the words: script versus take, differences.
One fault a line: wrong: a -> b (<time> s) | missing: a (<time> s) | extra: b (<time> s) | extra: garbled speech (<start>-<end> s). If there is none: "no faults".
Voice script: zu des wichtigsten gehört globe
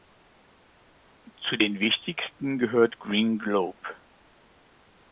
wrong: des -> den (1.5 s)
extra: green (3.0 s)